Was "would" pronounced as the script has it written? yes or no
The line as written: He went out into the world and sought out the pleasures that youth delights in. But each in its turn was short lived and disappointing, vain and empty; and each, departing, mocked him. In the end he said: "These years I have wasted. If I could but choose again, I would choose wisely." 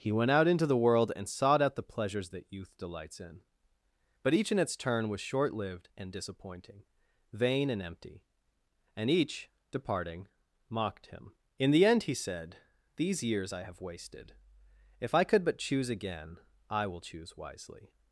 no